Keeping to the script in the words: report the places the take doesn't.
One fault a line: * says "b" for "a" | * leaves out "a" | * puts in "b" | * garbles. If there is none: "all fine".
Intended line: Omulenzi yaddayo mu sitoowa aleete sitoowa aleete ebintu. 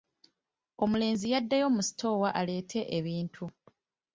* leaves out "sitoowa aleete"